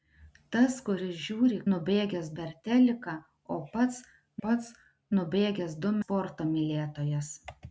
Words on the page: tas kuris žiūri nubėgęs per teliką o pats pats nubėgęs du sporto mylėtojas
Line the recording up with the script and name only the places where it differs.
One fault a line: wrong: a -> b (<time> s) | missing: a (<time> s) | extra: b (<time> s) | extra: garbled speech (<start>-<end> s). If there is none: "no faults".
no faults